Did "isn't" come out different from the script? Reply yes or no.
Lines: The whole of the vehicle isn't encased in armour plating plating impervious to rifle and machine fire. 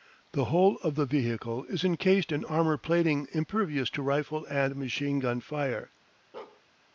yes